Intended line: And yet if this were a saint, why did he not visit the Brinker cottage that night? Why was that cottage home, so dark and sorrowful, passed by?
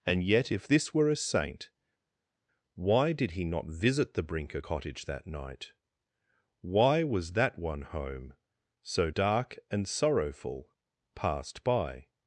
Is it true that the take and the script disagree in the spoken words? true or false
true